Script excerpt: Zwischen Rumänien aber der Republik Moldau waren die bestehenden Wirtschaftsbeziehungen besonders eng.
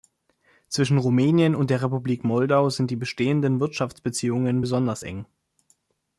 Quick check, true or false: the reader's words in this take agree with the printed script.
false